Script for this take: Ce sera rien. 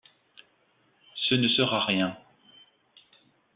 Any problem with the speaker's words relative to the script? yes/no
yes